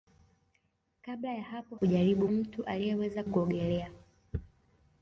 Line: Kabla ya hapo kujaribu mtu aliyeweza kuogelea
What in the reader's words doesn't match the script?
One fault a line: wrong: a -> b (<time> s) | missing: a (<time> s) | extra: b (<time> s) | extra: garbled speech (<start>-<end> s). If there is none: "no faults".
no faults